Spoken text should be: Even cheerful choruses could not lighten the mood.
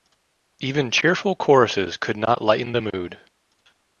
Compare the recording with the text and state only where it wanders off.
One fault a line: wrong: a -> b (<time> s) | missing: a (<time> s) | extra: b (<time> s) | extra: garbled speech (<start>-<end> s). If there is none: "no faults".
no faults